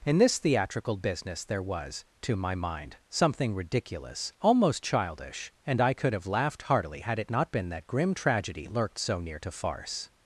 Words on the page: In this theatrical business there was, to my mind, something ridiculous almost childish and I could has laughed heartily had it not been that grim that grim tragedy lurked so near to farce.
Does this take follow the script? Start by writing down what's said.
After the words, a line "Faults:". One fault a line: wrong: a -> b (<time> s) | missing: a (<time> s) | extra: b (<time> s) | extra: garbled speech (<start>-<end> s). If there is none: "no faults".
In this theatrical business there was, to my mind, something ridiculous almost childish and I could have laughed heartily had it not been that grim tragedy lurked so near to farce.
Faults:
wrong: has -> have (6.1 s)
missing: that grim (8.1 s)